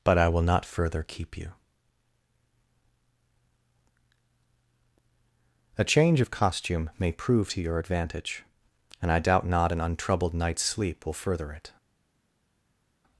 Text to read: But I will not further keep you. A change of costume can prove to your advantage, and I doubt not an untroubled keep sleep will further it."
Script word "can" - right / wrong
wrong